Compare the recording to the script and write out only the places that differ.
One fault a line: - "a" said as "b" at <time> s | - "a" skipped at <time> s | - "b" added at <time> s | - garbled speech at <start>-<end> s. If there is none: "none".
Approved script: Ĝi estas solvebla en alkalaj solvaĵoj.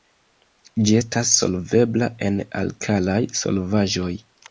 none